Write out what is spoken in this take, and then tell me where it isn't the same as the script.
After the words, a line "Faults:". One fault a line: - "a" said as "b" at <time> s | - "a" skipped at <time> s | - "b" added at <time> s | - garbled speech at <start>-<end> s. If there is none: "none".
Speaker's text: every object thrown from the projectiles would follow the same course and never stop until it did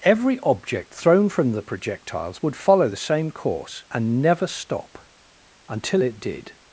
every object thrown from the projectiles would follow the same course and never stop until it did
Faults:
none